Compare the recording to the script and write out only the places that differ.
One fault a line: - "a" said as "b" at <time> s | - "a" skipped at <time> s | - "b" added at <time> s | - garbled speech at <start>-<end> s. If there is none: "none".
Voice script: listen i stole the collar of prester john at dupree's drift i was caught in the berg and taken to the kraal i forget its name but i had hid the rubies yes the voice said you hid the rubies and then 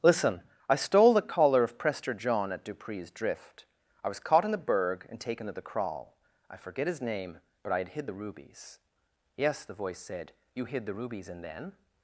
- "its" said as "his" at 6.9 s